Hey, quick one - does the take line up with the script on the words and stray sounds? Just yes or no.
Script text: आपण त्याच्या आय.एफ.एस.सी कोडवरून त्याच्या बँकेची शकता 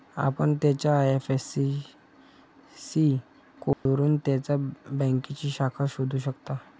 no